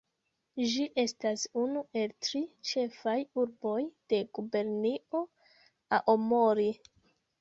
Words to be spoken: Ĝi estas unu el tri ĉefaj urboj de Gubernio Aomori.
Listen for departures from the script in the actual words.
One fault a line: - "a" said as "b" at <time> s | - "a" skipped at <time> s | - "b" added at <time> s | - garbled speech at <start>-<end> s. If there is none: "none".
none